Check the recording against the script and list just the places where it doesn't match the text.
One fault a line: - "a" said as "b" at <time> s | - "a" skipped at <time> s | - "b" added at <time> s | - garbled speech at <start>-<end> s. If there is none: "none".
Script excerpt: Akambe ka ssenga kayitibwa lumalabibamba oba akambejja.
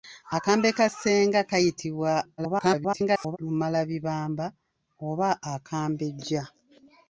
- garbled speech at 2.4-3.4 s